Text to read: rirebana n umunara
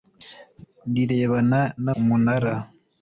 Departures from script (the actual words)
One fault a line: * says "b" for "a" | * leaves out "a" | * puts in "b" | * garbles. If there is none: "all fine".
all fine